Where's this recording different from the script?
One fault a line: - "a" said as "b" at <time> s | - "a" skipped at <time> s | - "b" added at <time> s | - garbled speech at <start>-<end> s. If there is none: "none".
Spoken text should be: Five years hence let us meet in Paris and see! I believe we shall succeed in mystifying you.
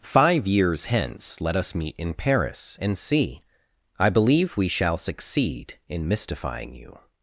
none